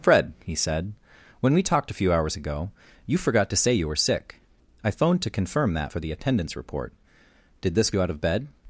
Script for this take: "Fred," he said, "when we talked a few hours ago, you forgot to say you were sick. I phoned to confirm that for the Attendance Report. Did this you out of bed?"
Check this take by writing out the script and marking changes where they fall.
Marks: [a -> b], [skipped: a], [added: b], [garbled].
"Fred," he said, "when we talked a few hours ago, you forgot to say you were sick. I phoned to confirm that for the Attendance Report. Did this you out of bed?"